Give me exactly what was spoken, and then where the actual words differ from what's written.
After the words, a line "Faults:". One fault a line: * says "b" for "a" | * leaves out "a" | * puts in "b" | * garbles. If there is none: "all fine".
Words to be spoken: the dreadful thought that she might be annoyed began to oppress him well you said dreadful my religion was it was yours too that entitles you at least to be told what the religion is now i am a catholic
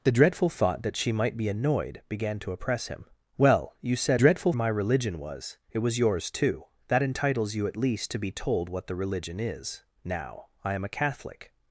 the dreadful thought that she might be annoyed began to oppress him well you said dreadful my religion was it was yours too that entitles you at least to be told what the religion is now i am a catholic
Faults:
all fine